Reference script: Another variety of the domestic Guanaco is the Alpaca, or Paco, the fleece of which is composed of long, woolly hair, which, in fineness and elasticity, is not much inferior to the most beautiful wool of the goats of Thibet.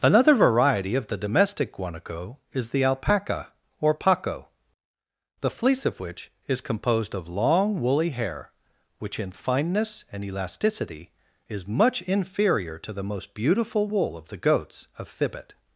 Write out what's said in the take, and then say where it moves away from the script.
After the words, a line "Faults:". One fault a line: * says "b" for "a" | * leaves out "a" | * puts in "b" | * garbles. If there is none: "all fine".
Another variety of the domestic Guanaco is the Alpaca, or Paco, the fleece of which is composed of long, woolly hair, which, in fineness and elasticity, is much inferior to the most beautiful wool of the goats of Thibet.
Faults:
* leaves out "not"